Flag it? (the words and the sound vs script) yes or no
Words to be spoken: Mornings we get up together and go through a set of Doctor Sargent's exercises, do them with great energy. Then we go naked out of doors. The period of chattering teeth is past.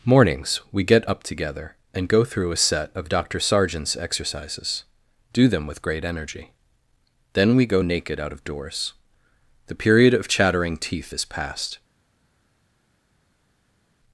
no